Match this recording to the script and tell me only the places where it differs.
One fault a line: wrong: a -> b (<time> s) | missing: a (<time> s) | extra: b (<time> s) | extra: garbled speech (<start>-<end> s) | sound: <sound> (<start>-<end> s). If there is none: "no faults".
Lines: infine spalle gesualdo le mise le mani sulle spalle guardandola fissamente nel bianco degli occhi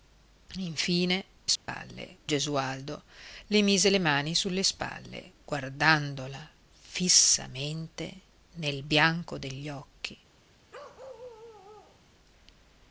sound: dropout (1.6-1.7 s)
sound: bark (10.7-12.0 s)